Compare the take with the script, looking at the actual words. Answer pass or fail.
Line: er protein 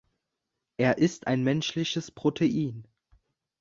fail